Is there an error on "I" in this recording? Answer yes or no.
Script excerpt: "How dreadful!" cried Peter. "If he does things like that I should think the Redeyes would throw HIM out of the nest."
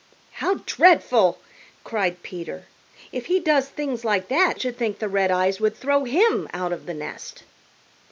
yes